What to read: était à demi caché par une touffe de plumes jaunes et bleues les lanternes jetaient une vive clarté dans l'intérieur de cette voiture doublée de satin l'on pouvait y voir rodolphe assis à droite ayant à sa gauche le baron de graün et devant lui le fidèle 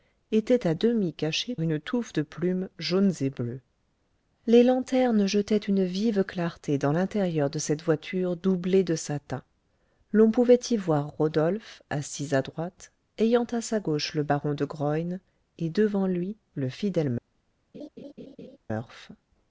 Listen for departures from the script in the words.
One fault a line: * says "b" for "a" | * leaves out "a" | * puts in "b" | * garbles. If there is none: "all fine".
* leaves out "par"